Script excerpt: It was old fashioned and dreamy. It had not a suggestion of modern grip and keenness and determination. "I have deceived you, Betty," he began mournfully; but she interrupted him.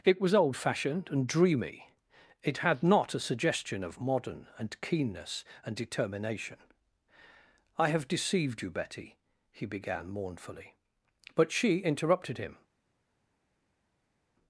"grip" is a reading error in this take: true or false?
true